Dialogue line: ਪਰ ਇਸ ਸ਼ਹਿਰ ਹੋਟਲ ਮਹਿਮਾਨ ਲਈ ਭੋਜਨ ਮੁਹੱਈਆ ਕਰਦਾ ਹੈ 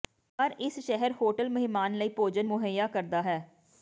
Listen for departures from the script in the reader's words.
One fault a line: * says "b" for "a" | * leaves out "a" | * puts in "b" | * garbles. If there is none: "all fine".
all fine